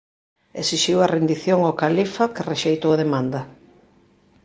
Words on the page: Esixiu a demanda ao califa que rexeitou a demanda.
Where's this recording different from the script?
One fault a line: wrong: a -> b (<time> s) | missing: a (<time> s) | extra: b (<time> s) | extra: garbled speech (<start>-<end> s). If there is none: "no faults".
wrong: demanda -> rendición (1.1 s)